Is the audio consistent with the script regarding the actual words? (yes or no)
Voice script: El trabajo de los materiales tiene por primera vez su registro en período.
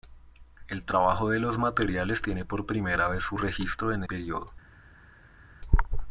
yes